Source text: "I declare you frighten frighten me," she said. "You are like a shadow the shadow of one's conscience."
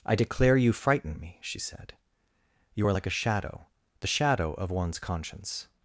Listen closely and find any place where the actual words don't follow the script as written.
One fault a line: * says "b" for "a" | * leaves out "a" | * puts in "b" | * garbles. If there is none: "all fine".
* leaves out "frighten"